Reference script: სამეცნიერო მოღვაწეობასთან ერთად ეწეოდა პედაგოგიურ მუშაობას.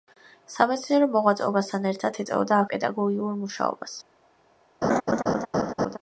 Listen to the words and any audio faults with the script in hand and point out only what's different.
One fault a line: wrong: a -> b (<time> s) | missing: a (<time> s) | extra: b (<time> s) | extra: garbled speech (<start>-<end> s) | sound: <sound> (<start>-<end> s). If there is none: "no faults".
sound: laugh (4.8-6.0 s)